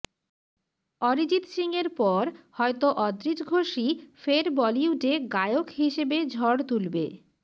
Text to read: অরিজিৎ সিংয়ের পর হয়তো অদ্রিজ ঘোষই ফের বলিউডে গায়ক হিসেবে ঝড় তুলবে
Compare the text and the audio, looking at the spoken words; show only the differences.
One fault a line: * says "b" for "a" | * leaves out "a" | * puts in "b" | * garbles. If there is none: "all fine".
all fine